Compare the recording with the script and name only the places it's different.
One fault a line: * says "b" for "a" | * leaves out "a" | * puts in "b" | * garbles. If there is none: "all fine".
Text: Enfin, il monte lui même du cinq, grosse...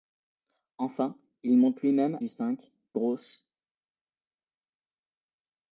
all fine